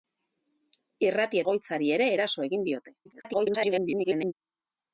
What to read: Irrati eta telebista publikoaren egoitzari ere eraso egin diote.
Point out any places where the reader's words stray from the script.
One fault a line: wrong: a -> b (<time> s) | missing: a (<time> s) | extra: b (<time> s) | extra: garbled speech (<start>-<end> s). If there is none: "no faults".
missing: eta telebista publikoaren (1.4 s)
extra: garbled speech (3.1-4.3 s)